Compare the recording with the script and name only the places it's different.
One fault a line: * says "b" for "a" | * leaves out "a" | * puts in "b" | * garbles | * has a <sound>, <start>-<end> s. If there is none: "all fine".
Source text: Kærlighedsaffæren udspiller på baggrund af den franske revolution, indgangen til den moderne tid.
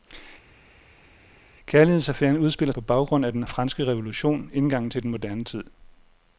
all fine